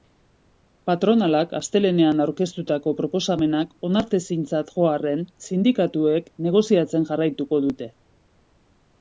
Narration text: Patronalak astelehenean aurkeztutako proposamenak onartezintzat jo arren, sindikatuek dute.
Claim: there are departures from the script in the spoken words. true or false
true